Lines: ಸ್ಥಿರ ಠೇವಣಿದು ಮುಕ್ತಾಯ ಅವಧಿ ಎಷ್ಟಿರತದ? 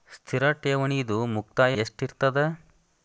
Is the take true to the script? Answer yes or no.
no